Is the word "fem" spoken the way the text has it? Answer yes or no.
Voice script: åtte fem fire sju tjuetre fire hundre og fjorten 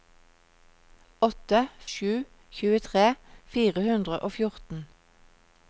no